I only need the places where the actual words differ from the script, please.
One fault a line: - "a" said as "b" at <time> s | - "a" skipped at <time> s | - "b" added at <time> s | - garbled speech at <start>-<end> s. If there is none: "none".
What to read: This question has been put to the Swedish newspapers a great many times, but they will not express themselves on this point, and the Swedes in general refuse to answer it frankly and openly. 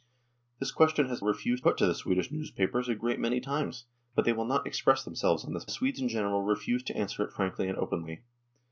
- "been" said as "refuse" at 1.2 s
- "point and" skipped at 5.6 s